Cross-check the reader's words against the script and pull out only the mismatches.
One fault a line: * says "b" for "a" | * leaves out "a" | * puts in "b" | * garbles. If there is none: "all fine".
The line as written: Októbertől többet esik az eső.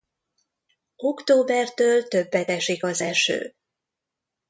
all fine